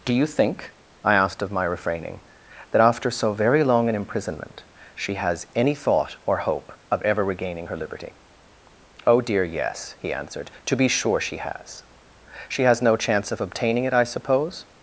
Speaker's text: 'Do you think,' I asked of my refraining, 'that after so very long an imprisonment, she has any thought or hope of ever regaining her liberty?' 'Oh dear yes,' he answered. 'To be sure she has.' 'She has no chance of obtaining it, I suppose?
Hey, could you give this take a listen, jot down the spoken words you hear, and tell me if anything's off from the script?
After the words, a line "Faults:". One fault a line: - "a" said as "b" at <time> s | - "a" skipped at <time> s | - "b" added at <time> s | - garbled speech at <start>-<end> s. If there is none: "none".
'Do you think,' I asked of my refraining, 'that after so very long an imprisonment, she has any thought or hope of ever regaining her liberty?' 'Oh dear yes,' he answered. 'To be sure she has.' 'She has no chance of obtaining it, I suppose?
Faults:
none